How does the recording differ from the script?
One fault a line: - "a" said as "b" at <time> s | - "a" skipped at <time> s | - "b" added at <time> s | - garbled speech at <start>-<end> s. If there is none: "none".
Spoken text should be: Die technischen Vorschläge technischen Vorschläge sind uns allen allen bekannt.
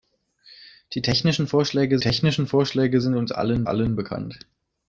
none